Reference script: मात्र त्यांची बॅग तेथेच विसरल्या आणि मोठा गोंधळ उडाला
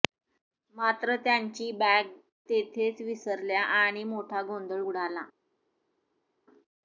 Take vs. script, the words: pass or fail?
pass